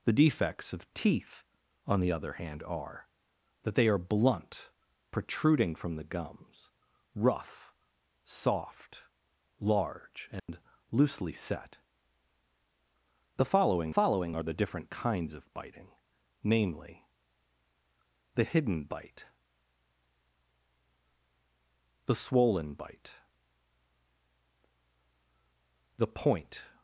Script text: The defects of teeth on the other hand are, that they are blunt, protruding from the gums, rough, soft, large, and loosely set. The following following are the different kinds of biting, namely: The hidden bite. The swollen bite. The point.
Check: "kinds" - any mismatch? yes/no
no